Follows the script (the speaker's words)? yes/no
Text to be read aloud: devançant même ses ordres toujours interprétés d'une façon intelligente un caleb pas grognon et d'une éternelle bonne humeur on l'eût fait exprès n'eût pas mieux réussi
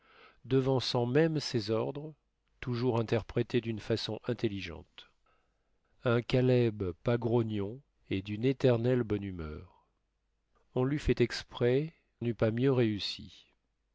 yes